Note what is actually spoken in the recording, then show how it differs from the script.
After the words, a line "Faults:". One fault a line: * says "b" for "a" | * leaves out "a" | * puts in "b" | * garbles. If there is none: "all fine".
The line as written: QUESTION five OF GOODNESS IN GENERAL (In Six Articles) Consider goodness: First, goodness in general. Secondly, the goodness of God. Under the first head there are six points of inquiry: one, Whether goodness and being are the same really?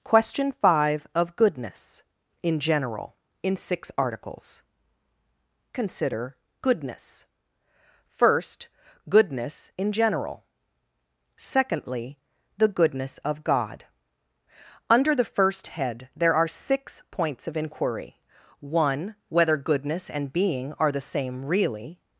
QUESTION five OF GOODNESS IN GENERAL (In Six Articles) Consider goodness: First, goodness in general. Secondly, the goodness of God. Under the first head there are six points of inquiry: one, Whether goodness and being are the same really?
Faults:
all fine